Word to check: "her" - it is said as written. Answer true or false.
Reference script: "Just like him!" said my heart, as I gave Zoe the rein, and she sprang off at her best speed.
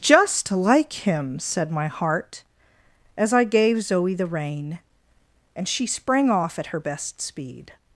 true